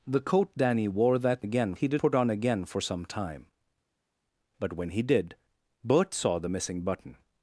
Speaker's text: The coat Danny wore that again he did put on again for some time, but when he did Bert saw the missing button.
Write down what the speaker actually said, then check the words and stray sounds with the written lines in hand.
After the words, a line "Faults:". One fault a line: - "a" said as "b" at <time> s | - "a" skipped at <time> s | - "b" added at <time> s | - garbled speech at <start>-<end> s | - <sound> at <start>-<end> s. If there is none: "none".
The coat Danny wore that again he did put on again for some time, but when he did Bert saw the missing button.
Faults:
none